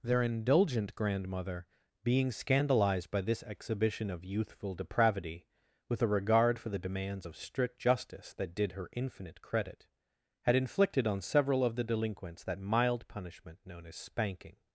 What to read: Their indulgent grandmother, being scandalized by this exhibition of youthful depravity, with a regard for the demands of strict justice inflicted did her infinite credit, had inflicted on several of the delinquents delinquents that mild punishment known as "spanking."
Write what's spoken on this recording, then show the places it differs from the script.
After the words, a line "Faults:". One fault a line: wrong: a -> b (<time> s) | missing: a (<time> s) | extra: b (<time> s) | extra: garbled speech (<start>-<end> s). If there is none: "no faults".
Their indulgent grandmother, being scandalized by this exhibition of youthful depravity, with a regard for the demands of strict justice that did her infinite credit, had inflicted on several of the delinquents that mild punishment known as "spanking."
Faults:
wrong: inflicted -> that (8.3 s)
missing: delinquents (12.4 s)